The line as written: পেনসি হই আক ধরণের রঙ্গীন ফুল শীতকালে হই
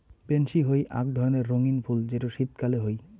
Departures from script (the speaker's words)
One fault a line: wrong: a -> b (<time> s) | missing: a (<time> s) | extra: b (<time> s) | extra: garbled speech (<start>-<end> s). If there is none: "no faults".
extra: যেটো (2.1 s)